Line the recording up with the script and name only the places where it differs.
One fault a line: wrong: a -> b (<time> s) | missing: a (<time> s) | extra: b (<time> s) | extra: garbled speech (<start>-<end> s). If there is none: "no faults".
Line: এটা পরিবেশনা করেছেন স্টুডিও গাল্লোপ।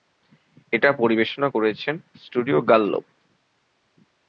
no faults